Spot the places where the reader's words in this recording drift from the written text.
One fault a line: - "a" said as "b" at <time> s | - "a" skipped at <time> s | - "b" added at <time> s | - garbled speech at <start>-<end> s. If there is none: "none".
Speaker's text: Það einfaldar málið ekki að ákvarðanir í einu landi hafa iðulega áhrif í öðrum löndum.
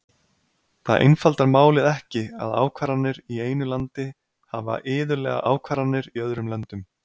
- "áhrif" said as "ákvarðanir" at 5.5 s